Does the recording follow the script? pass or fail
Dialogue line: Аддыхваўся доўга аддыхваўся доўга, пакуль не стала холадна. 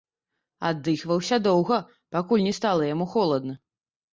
fail